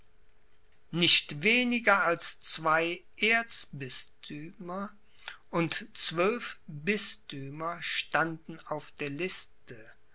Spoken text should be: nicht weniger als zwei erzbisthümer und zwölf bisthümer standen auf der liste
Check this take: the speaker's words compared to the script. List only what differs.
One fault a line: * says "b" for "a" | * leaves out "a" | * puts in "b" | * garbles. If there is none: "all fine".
all fine